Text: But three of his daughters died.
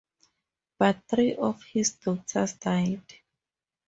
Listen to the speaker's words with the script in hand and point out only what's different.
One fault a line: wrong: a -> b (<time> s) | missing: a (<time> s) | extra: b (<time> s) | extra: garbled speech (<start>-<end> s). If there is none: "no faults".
no faults